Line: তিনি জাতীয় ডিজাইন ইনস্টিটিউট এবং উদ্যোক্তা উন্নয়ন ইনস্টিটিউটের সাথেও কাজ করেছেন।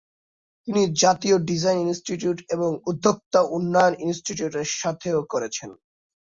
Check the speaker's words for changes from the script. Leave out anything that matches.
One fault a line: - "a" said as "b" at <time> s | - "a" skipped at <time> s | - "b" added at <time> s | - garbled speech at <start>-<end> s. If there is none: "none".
- "কাজ" skipped at 5.2 s